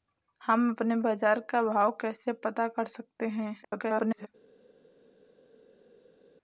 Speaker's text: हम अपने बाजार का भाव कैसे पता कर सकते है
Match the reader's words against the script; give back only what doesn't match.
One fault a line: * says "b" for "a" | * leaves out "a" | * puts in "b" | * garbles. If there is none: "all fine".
* garbles